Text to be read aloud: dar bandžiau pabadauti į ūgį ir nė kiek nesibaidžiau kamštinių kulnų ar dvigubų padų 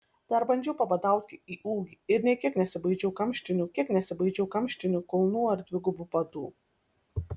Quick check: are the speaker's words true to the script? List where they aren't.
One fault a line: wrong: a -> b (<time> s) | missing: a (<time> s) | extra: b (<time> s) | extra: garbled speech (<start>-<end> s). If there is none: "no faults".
extra: kiek nesibaidžiau kamštinių (3.8 s)